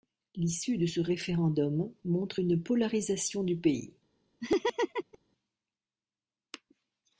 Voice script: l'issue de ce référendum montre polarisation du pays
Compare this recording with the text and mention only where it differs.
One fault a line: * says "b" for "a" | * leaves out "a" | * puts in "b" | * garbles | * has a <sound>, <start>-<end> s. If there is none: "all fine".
* puts in "une"
* has a laugh, 4.4-5.2 s